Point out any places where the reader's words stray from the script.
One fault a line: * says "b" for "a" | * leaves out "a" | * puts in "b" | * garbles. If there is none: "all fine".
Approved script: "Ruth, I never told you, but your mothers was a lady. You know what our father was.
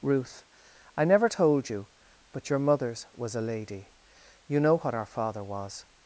all fine